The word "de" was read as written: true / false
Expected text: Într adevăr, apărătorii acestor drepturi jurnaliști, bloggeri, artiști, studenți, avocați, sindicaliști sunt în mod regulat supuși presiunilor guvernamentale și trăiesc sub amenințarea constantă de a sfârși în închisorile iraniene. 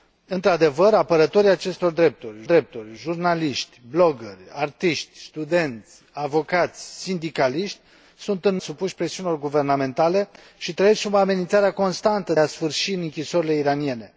false